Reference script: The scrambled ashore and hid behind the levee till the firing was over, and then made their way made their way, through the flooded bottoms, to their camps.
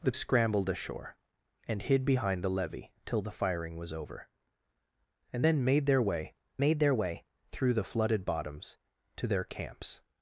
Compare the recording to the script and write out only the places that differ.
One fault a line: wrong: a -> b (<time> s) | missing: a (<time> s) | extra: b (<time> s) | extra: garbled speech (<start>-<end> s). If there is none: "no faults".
no faults